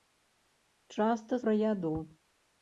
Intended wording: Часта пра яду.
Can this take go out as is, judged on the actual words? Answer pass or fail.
pass